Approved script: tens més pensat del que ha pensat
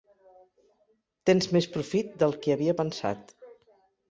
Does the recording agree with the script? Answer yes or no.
no